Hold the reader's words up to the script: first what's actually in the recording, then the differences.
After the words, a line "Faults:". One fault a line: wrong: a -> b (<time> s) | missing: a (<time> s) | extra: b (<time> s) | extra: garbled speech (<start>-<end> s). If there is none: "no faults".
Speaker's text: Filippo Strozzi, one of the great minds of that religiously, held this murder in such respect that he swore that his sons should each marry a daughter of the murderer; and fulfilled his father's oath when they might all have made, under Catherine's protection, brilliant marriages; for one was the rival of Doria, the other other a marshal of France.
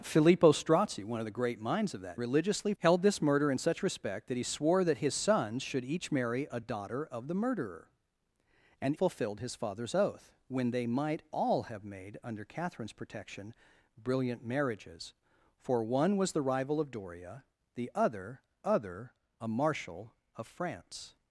Filippo Strozzi, one of the great minds of that religiously, held this murder in such respect that he swore that his sons should each marry a daughter of the murderer; and fulfilled his father's oath when they might all have made, under Catherine's protection, brilliant marriages; for one was the rival of Doria, the other other a marshal of France.
Faults:
no faults